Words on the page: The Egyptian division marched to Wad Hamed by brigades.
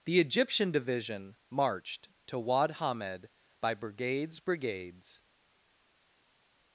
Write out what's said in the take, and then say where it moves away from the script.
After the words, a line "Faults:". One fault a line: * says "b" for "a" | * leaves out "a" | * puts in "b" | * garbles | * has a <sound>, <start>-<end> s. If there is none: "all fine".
The Egyptian division marched to Wad Hamed by brigades brigades.
Faults:
* puts in "brigades"